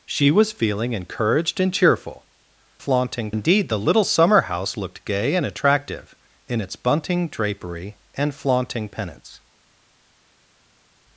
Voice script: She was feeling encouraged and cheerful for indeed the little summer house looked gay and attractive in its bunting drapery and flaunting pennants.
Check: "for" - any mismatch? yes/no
yes